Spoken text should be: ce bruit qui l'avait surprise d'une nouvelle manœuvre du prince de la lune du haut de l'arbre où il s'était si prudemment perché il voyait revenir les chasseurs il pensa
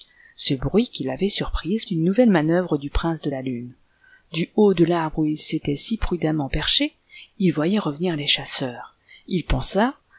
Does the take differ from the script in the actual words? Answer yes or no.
no